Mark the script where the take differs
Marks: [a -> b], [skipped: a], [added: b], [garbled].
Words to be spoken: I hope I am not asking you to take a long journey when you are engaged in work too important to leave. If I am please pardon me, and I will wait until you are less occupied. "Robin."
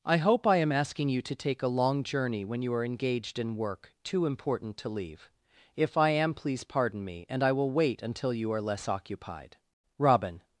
I hope I am [skipped: not] asking you to take a long journey when you are engaged in work too important to leave. If I am please pardon me, and I will wait until you are less occupied. "Robin."